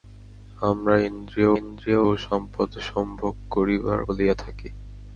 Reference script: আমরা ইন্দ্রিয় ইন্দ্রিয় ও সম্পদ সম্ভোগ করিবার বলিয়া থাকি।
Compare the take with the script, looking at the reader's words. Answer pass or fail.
pass